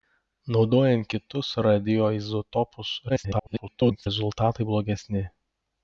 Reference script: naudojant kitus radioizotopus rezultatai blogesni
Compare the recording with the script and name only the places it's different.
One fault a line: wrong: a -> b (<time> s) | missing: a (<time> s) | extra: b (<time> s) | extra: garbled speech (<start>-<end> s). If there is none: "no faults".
extra: garbled speech (3.1-4.1 s)